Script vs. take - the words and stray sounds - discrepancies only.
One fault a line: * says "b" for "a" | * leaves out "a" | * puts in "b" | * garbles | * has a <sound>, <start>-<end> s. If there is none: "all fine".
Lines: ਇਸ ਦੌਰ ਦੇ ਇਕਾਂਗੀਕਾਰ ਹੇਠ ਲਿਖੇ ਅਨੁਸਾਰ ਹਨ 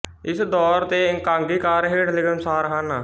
all fine